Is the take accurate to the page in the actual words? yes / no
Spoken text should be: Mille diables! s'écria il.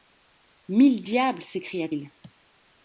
yes